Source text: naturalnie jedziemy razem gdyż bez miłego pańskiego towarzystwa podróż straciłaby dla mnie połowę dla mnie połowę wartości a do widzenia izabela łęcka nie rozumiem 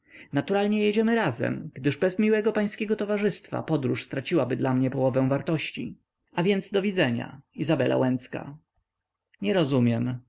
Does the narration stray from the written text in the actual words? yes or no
yes